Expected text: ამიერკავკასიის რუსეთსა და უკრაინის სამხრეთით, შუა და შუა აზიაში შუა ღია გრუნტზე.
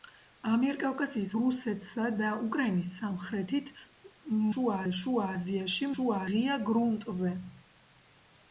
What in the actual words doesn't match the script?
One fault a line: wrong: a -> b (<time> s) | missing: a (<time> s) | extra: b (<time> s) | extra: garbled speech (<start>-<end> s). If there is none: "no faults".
no faults